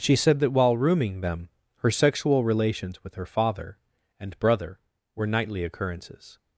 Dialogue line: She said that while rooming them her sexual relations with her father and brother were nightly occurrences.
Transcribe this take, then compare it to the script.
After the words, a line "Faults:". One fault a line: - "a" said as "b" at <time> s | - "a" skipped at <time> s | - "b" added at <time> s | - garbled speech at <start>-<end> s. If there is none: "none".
She said that while rooming them her sexual relations with her father and brother were nightly occurrences.
Faults:
none